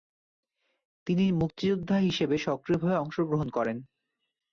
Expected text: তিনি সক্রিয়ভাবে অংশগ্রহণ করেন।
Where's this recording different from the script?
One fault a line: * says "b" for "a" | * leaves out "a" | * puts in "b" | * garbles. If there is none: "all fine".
* puts in "মুক্তিযোদ্ধা হিসেবে"